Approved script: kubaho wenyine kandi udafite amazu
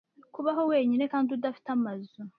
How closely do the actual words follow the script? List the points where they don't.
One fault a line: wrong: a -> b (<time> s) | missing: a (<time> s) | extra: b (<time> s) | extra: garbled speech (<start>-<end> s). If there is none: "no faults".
no faults